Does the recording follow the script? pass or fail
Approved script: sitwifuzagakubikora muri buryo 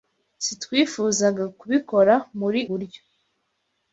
pass